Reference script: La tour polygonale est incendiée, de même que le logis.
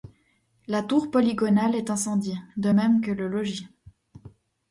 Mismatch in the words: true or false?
false